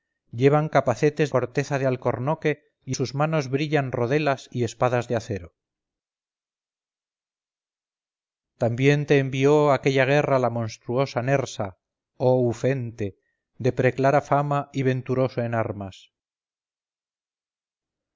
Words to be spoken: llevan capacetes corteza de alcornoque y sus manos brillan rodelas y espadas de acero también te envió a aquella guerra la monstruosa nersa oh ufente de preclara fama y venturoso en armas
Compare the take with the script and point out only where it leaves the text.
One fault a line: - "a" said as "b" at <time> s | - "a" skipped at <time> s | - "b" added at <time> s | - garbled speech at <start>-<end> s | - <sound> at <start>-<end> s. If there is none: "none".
none